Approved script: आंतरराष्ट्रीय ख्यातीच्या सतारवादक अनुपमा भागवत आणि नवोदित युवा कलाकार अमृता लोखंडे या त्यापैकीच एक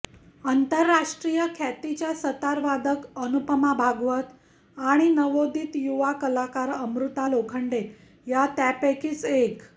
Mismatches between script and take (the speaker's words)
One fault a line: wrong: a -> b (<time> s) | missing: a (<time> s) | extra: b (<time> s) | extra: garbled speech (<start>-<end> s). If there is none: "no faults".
no faults